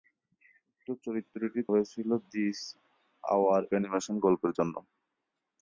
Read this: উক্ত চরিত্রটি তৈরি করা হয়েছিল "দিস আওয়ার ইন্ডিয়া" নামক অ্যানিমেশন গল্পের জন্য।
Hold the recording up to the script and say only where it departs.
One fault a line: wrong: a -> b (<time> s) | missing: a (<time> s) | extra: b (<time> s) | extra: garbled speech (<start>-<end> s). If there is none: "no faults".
missing: তৈরি করা (1.6 s)
missing: ইন্ডিয়া নামক (3.6 s)